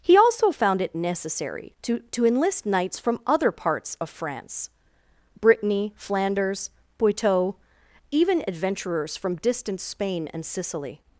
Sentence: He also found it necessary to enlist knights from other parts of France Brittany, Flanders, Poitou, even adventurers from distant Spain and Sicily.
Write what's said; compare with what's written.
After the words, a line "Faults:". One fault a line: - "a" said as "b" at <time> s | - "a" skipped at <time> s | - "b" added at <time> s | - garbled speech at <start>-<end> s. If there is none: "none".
He also found it necessary to to enlist knights from other parts of France Brittany, Flanders, Poitou, even adventurers from distant Spain and Sicily.
Faults:
- "to" added at 2.1 s